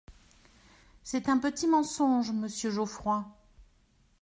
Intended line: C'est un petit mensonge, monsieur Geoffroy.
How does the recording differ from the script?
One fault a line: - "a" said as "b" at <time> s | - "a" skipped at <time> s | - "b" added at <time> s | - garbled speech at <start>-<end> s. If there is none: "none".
none